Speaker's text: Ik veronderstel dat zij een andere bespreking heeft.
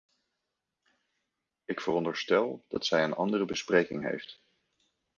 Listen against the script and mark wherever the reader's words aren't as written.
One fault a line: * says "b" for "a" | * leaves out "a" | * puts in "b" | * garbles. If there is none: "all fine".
all fine